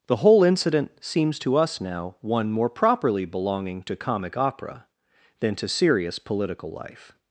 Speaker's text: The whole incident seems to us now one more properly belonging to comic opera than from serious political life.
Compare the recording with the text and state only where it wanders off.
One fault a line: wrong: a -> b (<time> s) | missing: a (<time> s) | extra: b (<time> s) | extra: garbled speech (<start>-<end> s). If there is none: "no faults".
wrong: from -> to (5.5 s)